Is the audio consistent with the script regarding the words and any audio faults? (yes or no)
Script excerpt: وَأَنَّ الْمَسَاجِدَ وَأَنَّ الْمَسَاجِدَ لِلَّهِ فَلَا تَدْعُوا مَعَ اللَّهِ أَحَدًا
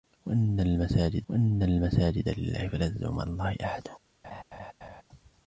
no